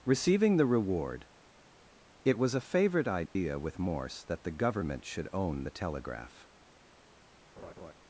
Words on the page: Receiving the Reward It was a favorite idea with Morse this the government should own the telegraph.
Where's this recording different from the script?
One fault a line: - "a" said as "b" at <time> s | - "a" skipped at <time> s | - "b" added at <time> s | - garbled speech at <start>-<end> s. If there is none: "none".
- "this" said as "that" at 4.2 s